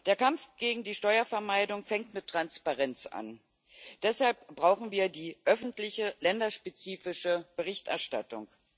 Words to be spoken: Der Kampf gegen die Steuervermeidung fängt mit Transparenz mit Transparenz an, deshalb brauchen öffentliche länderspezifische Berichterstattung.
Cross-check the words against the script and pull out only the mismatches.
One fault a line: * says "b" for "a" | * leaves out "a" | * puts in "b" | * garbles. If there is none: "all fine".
* leaves out "mit Transparenz"
* puts in "wir die"